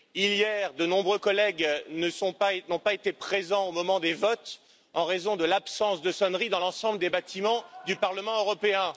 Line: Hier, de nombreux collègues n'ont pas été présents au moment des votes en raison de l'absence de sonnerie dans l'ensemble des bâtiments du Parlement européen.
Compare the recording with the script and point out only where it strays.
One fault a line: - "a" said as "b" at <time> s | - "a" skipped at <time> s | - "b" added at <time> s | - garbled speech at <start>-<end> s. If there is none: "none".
none